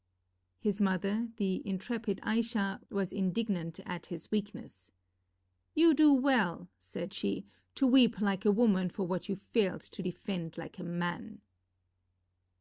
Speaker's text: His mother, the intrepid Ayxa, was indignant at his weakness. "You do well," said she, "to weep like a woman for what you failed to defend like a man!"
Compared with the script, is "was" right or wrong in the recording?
right